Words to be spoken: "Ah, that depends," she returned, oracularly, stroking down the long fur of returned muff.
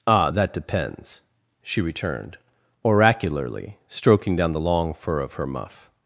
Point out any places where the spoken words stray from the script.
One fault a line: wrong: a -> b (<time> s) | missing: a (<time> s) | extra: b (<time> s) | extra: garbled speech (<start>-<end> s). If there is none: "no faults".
wrong: returned -> her (5.3 s)